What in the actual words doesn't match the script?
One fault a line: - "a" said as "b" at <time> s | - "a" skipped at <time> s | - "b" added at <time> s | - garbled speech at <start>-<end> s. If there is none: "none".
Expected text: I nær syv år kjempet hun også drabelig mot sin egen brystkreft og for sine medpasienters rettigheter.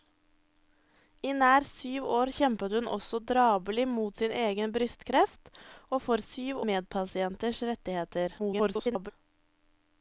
- "sine" said as "syv" at 6.2 s
- garbled speech at 8.4-9.1 s